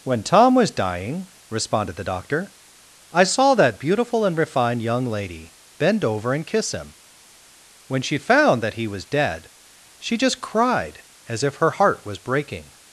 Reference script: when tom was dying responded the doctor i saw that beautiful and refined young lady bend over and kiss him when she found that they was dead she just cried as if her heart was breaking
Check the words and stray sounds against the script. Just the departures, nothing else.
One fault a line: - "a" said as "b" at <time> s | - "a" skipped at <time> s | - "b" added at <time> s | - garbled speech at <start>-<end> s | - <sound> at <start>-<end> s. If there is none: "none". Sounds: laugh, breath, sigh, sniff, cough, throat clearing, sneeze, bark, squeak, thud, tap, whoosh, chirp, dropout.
- "they" said as "he" at 8.7 s